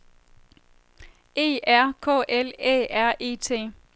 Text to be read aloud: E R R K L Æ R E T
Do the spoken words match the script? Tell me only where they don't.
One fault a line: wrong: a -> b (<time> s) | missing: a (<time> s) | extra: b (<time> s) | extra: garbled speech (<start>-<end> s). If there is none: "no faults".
missing: R (1.9 s)